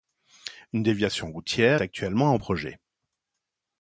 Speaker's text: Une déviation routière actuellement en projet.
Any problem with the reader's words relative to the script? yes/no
no